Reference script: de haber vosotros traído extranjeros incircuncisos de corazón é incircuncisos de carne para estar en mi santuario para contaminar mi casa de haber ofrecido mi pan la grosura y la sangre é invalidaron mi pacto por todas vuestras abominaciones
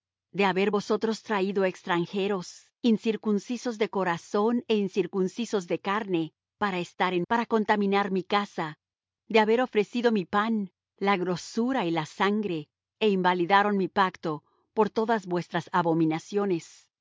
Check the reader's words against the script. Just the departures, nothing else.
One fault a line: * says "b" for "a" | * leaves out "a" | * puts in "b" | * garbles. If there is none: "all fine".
* leaves out "mi santuario"